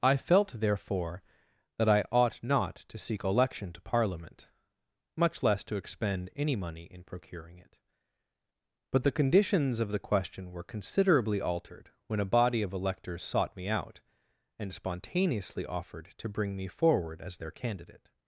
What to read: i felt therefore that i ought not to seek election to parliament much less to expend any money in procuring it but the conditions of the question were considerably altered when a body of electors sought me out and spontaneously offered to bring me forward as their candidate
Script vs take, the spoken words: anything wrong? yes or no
no